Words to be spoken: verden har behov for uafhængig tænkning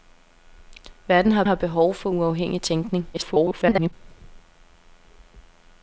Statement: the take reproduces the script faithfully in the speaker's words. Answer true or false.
false